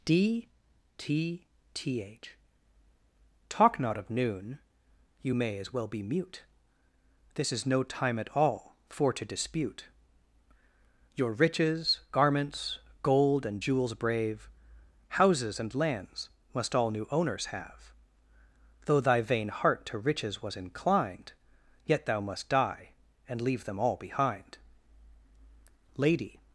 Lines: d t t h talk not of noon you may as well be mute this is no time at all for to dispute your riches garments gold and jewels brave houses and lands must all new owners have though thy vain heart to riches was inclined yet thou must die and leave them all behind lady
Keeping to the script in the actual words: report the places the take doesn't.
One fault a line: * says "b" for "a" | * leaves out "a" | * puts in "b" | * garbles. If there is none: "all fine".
all fine